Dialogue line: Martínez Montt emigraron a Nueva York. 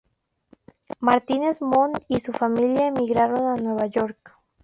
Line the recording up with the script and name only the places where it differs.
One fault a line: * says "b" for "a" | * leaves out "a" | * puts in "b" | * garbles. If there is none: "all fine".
* puts in "y su familia"